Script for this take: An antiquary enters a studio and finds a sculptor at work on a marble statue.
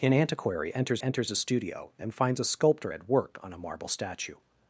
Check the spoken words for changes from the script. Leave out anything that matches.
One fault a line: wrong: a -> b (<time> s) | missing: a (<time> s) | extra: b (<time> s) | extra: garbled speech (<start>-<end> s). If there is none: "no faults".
extra: enters (1.0 s)